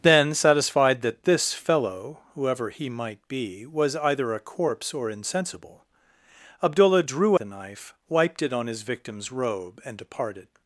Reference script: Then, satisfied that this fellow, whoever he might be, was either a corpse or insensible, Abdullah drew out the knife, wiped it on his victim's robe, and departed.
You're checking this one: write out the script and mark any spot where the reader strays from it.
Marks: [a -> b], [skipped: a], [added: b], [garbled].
Then, satisfied that this fellow, whoever he might be, was either a corpse or insensible, Abdullah drew [skipped: out] the knife, wiped it on his victim's robe, and departed.